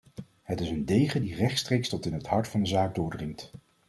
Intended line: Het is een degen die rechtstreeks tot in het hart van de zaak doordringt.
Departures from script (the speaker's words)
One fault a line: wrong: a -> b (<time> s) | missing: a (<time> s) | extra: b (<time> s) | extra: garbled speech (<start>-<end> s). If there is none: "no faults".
no faults